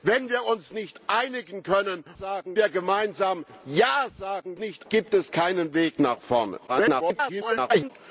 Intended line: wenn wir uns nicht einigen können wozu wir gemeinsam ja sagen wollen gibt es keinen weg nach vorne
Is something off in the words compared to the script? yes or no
yes